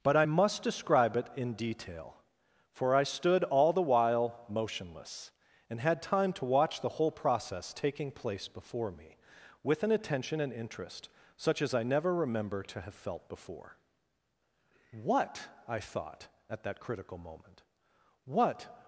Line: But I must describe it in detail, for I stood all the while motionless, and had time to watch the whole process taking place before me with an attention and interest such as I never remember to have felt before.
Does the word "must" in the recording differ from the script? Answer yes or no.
no